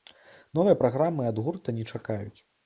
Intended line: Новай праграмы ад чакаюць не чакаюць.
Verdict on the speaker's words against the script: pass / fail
fail